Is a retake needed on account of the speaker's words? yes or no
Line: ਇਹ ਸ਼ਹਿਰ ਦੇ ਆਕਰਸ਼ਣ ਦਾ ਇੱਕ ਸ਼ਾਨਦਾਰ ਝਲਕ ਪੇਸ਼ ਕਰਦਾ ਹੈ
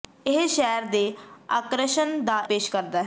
yes